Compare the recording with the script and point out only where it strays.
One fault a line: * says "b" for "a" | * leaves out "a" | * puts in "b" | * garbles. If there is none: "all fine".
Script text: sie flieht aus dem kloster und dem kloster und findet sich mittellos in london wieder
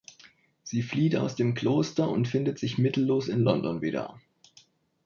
* leaves out "dem kloster und"